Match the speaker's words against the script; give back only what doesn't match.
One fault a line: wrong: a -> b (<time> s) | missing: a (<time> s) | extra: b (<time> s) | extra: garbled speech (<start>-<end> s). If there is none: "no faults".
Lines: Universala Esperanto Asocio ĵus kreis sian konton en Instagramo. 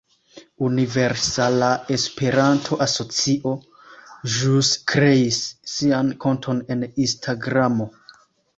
no faults